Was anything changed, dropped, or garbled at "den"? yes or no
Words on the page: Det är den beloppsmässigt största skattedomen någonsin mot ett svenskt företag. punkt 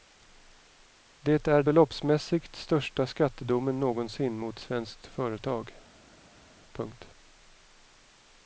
yes